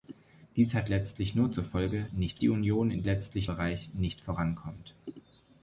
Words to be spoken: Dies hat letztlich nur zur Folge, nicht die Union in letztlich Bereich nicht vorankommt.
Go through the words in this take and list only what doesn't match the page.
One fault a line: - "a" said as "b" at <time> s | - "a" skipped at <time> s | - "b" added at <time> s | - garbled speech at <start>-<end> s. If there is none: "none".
none